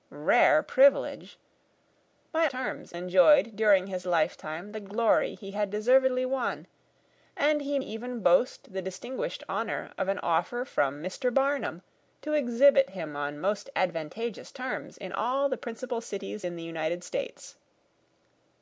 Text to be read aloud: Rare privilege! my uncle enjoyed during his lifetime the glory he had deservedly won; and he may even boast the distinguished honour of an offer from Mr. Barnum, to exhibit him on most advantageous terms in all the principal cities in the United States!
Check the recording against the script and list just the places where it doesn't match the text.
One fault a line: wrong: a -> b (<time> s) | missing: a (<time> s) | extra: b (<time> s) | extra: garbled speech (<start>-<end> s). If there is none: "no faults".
wrong: uncle -> terms (2.5 s)
missing: may (7.8 s)